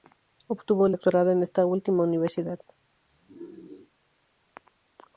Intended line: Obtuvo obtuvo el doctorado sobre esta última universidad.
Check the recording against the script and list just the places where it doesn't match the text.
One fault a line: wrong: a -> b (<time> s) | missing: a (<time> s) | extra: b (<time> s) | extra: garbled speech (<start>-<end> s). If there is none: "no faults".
missing: obtuvo (0.9 s)
wrong: sobre -> en (1.3 s)